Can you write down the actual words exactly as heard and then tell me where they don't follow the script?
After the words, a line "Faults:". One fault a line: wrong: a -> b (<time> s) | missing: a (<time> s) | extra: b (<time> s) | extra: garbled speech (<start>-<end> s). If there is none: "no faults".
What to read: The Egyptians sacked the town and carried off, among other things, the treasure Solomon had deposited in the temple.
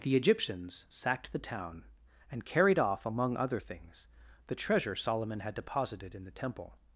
The Egyptians sacked the town and carried off, among other things, the treasure Solomon had deposited in the temple.
Faults:
no faults